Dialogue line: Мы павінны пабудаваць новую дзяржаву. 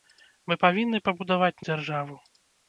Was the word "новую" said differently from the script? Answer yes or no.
yes